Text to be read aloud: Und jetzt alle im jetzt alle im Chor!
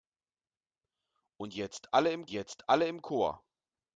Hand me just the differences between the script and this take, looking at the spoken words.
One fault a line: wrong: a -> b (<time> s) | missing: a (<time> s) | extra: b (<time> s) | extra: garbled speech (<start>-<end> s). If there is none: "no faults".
no faults